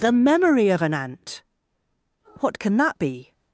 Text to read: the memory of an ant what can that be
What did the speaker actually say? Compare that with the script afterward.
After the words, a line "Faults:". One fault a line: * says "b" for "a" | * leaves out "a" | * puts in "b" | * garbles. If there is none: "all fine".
the memory of an ant what can that be
Faults:
all fine